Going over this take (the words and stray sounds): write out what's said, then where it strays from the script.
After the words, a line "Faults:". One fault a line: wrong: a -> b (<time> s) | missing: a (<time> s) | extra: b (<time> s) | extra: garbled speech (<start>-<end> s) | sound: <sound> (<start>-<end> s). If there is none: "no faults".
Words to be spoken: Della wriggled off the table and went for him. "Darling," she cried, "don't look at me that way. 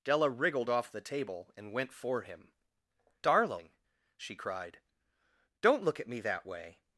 Della wriggled off the table and went for him. "Darling," she cried, "don't look at me that way.
Faults:
no faults